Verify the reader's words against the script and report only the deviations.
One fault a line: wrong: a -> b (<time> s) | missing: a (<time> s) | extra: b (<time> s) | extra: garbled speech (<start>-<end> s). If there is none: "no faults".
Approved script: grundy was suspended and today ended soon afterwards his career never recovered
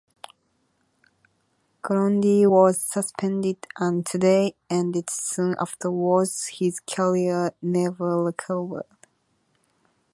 no faults